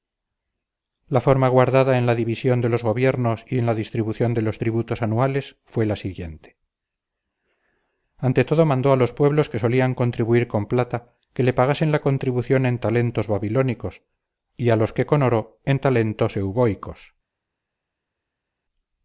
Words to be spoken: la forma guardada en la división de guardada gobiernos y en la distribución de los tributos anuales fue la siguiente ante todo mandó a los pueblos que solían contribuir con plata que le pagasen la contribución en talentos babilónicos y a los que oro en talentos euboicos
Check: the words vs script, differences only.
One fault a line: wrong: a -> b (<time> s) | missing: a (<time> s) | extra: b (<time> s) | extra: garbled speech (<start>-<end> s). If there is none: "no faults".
wrong: guardada -> los (2.7 s)
extra: con (15.1 s)